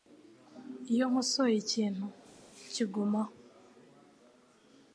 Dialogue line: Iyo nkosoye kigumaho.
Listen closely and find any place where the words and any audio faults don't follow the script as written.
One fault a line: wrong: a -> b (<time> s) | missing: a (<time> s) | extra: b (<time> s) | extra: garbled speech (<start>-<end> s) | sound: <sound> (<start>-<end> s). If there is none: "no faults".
extra: ikintu (1.6 s)